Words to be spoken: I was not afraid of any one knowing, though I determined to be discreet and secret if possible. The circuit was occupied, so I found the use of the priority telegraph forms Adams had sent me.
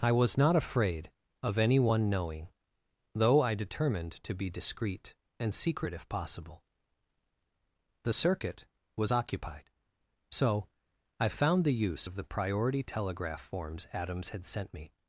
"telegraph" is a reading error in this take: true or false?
false